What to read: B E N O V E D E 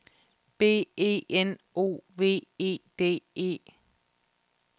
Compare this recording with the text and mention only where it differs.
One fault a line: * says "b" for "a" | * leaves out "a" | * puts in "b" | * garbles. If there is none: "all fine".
all fine